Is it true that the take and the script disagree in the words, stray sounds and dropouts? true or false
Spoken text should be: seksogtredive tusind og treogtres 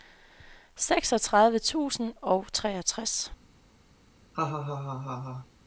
true